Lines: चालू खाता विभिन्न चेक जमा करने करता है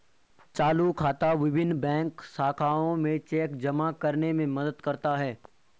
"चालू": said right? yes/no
yes